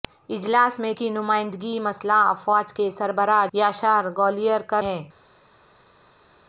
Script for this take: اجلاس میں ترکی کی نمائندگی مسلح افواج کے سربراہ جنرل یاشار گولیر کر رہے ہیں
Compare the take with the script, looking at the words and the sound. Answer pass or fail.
fail